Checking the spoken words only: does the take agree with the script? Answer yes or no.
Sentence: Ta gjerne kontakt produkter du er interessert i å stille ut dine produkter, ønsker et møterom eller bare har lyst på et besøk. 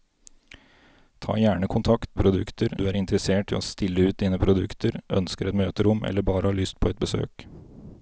yes